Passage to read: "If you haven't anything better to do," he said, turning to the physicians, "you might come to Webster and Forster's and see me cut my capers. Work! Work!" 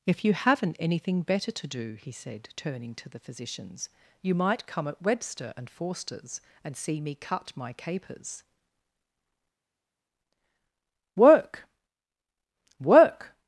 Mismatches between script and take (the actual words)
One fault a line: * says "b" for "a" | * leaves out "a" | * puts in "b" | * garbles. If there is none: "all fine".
* says "at" for "to"